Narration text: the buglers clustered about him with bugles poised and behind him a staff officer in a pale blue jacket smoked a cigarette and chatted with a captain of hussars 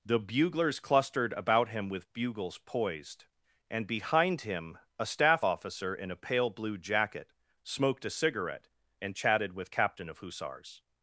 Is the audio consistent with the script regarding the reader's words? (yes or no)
no